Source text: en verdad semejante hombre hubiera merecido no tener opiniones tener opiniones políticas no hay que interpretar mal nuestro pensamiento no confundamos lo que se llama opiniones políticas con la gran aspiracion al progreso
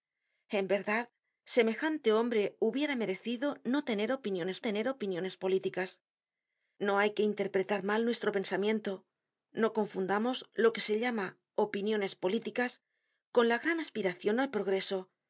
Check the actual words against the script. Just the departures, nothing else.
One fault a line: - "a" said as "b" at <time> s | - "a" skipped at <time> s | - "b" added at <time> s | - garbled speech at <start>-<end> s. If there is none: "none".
none